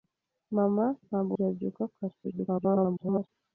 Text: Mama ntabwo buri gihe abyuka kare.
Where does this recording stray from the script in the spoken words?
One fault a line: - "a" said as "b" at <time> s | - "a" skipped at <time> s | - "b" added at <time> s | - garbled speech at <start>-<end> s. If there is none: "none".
- "buri" skipped at 1.3 s
- garbled speech at 2.2-3.3 s